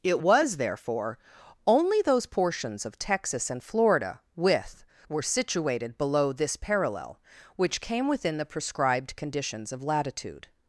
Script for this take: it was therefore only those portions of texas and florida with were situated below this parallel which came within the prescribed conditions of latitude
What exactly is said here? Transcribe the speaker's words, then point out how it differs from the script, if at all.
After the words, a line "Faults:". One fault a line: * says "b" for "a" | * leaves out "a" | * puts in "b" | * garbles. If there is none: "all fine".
it was therefore only those portions of texas and florida with were situated below this parallel which came within the prescribed conditions of latitude
Faults:
all fine